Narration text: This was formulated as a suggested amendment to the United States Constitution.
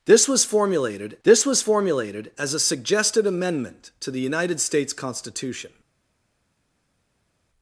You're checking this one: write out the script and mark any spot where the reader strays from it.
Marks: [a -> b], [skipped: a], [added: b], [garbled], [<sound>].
This was formulated [added: this was formulated] as a suggested amendment to the United States Constitution.